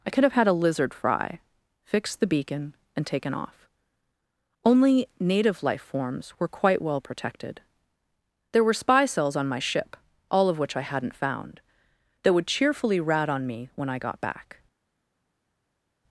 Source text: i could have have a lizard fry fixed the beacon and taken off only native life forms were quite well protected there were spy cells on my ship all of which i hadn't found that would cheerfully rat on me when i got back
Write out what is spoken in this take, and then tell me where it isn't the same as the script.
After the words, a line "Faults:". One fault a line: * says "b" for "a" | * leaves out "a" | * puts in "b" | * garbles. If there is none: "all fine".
i could have had a lizard fry fixed the beacon and taken off only native life forms were quite well protected there were spy cells on my ship all of which i hadn't found that would cheerfully rat on me when i got back
Faults:
* says "had" for "have"